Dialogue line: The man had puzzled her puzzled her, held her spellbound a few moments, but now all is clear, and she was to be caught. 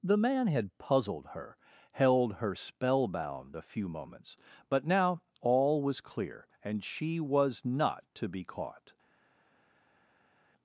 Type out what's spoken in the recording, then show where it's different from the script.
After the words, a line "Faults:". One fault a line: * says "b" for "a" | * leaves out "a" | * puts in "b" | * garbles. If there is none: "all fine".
The man had puzzled her, held her spellbound a few moments, but now all was clear, and she was not to be caught.
Faults:
* leaves out "puzzled her"
* says "was" for "is"
* puts in "not"